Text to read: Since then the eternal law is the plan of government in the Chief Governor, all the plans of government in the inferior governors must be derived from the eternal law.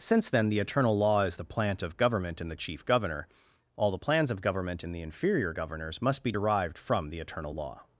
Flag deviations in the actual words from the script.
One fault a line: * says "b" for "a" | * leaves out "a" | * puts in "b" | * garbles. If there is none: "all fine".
* says "plant" for "plan"